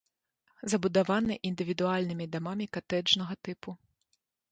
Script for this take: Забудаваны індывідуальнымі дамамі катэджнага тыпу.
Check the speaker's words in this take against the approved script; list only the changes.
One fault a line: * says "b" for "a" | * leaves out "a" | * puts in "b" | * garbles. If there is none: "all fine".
all fine